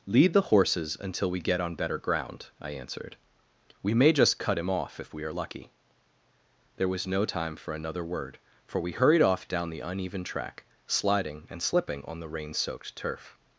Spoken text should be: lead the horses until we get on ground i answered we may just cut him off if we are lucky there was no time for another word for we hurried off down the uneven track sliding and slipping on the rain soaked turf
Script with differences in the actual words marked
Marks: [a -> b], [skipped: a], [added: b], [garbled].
lead the horses until we get on [added: better] ground i answered we may just cut him off if we are lucky there was no time for another word for we hurried off down the uneven track sliding and slipping on the rain soaked turf